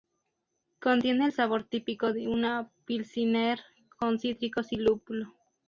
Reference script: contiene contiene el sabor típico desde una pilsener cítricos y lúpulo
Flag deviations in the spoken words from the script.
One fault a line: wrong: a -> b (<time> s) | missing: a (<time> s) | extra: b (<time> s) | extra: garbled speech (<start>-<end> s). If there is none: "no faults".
missing: contiene (1.3 s)
wrong: desde -> de (2.1 s)
extra: con (4.0 s)